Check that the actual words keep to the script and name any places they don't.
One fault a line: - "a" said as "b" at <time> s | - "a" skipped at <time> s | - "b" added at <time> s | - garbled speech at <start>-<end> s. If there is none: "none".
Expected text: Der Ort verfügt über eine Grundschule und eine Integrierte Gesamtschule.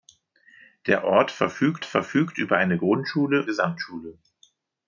- "verfügt" added at 1.8 s
- "und eine Integrierte" skipped at 3.5 s